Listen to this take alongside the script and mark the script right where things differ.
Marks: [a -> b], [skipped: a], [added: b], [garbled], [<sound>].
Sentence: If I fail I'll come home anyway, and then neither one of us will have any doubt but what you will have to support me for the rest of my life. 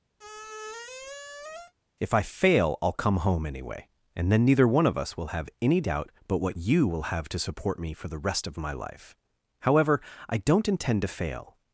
[squeak] If I fail I'll come home anyway, and then neither one of us will have any doubt but what you will have to support me for the rest of my life. [added: However I don't intend to fail]